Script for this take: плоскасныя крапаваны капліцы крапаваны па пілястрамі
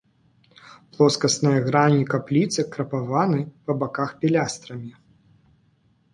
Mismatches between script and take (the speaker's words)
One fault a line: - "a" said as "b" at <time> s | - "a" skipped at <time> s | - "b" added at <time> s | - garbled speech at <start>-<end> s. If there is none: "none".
- "крапаваны" said as "грані" at 1.7 s
- "баках" added at 3.9 s